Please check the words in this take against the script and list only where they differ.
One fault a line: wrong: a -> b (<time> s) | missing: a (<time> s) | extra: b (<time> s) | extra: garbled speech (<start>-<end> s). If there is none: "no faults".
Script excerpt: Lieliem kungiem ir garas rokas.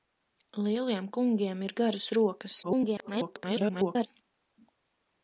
extra: garbled speech (2.6-4.1 s)